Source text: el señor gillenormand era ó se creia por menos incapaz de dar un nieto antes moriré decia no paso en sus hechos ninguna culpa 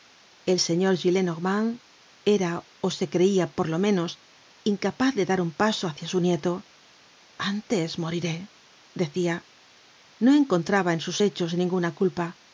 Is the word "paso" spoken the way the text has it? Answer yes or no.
no